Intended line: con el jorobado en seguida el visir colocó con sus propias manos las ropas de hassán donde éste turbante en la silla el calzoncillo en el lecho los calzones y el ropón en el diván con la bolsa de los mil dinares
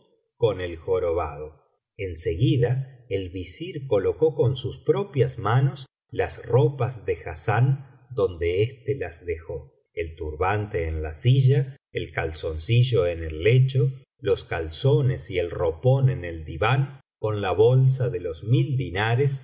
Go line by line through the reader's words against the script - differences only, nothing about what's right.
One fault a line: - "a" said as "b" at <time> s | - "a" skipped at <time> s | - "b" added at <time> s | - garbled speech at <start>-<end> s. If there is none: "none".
- "las dejó el" added at 8.9 s